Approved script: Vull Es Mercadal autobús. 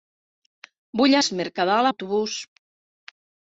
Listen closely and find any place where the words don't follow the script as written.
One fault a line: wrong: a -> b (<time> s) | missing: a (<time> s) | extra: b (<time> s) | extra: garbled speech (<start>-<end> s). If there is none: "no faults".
no faults